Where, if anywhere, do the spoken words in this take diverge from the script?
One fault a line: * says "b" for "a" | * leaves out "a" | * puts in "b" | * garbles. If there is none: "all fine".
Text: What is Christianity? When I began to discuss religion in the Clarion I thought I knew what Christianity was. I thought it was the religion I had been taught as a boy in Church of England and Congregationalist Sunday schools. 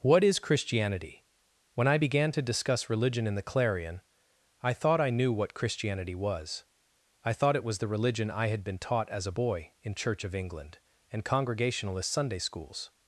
all fine